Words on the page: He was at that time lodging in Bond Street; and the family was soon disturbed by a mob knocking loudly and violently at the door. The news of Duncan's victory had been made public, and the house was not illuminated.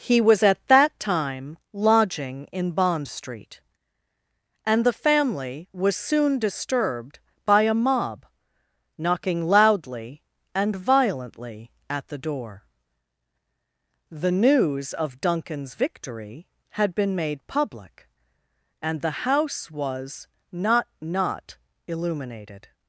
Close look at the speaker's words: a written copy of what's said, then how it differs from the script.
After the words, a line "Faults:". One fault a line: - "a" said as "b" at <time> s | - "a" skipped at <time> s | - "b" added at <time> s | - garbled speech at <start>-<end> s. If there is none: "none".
He was at that time lodging in Bond Street; and the family was soon disturbed by a mob knocking loudly and violently at the door. The news of Duncan's victory had been made public, and the house was not not illuminated.
Faults:
- "not" added at 21.0 s